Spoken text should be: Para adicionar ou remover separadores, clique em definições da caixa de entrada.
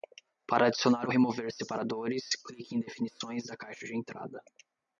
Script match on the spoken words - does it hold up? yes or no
yes